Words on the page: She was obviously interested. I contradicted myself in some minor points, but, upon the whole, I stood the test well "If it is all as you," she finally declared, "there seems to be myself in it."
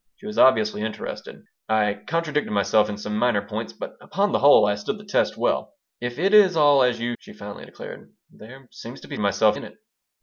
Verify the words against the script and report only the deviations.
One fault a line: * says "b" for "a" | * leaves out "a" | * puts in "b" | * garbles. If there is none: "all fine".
all fine